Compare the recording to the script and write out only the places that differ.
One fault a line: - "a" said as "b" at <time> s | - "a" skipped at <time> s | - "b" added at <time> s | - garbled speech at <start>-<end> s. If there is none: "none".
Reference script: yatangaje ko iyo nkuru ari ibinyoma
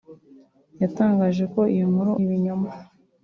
- "ari" skipped at 2.1 s